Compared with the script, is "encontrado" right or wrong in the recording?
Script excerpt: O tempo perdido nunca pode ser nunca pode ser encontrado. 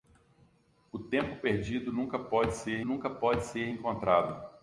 right